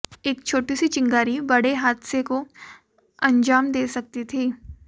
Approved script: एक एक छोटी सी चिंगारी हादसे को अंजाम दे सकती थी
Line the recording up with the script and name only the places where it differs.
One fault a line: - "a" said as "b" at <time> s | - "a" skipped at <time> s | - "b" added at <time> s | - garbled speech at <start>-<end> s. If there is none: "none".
- "एक" skipped at 0.4 s
- "बड़े" added at 1.5 s